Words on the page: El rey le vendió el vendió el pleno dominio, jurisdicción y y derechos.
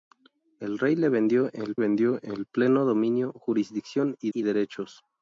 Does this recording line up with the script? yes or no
yes